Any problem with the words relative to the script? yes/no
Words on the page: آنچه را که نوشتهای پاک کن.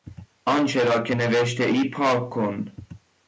no